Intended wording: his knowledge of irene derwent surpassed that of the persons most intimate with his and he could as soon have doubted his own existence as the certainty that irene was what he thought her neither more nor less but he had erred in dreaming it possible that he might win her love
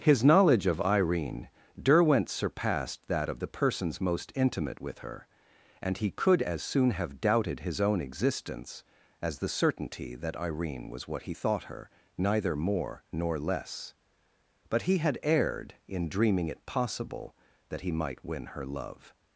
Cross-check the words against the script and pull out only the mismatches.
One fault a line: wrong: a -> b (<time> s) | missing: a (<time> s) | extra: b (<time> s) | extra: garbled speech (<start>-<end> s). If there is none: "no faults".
wrong: his -> her (5.0 s)